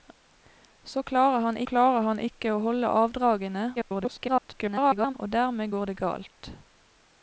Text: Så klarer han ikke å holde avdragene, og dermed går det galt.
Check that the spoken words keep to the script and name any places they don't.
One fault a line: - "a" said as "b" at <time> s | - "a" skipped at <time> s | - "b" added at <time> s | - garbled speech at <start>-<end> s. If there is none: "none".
- "klarer han" added at 1.7 s
- garbled speech at 3.8-5.1 s